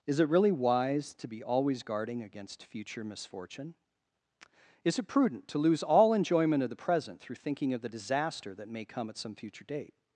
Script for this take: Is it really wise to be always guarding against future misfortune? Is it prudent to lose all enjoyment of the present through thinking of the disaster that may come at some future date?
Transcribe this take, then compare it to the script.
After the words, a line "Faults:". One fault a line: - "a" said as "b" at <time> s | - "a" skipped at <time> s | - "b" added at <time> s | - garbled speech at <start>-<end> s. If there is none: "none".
Is it really wise to be always guarding against future misfortune? Is it prudent to lose all enjoyment of the present through thinking of the disaster that may come at some future date?
Faults:
none